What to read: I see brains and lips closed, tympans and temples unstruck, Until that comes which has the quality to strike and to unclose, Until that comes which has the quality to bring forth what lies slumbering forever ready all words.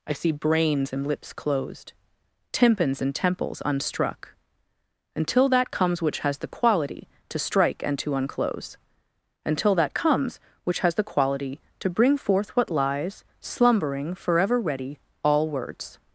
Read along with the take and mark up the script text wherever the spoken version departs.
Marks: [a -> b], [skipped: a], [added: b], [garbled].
I see brains and lips closed, tympans and temples unstruck, Until that comes which has the quality to strike and to unclose, Until that comes which has the quality to bring forth what lies slumbering forever ready all words.